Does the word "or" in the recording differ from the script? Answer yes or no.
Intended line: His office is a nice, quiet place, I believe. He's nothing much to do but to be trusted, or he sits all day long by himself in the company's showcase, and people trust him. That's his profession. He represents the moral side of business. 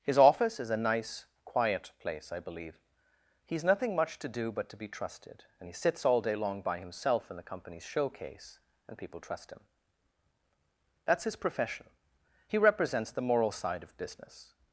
yes